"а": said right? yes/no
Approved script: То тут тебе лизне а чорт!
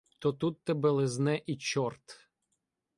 no